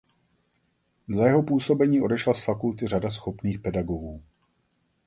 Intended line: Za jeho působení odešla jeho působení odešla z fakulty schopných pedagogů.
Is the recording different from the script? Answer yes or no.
yes